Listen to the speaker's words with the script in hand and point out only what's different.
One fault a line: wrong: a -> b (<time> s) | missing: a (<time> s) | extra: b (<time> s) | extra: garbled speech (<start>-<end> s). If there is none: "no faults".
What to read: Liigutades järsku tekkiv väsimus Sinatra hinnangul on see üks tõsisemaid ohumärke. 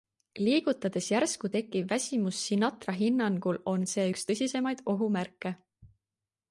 no faults